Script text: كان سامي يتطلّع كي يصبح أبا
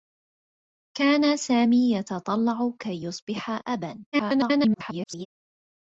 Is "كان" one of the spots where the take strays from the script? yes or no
no